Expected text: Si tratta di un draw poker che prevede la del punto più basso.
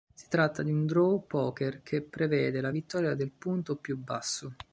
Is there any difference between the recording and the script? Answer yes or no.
yes